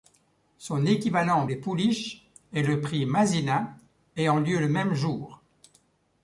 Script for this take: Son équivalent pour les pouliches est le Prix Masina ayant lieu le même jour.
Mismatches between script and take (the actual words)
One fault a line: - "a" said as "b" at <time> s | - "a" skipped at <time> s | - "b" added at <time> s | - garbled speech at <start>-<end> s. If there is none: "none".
- "pour" skipped at 1.5 s